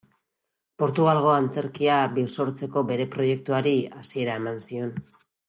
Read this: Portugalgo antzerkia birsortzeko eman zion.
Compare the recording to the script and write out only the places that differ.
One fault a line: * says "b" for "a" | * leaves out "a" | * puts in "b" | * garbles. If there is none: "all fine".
* puts in "bere proiektuari hasiera"